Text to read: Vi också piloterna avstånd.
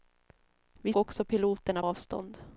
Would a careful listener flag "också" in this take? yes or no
no